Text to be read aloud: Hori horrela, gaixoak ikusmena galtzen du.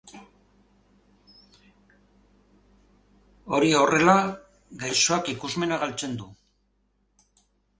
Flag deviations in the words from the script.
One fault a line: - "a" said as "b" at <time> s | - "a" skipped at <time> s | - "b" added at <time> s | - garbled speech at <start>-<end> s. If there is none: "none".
none